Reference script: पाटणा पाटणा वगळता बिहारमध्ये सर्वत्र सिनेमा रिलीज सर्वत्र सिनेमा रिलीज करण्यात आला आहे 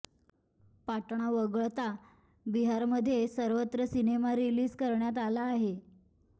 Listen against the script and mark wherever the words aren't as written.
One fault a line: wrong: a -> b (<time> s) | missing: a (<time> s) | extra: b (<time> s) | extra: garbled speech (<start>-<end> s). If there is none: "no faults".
missing: पाटणा (1.3 s)
missing: सर्वत्र सिनेमा रिलीज (4.7 s)